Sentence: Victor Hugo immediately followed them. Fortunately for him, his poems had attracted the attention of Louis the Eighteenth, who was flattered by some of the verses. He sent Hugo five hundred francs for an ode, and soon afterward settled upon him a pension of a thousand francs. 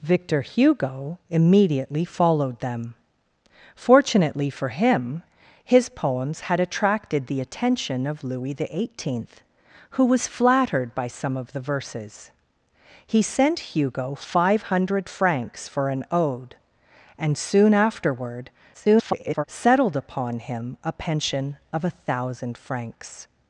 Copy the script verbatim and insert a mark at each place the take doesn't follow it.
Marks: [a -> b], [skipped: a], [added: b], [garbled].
Victor Hugo immediately followed them. Fortunately for him, his poems had attracted the attention of Louis the Eighteenth, who was flattered by some of the verses. He sent Hugo five hundred francs for an ode, and soon afterward [garbled] settled upon him a pension of a thousand francs.